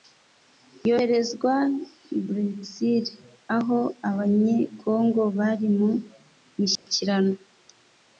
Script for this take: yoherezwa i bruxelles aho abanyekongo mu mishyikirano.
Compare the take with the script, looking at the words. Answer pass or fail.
fail